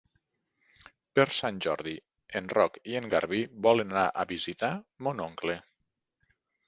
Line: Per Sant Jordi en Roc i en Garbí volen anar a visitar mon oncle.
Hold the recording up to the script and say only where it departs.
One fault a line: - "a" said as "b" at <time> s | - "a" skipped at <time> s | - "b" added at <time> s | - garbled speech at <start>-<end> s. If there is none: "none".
none